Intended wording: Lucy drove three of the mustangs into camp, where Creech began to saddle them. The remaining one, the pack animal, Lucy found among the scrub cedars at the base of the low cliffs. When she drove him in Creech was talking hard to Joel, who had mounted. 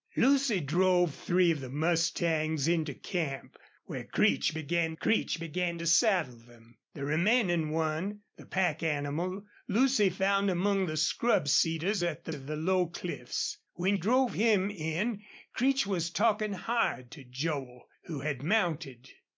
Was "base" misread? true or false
true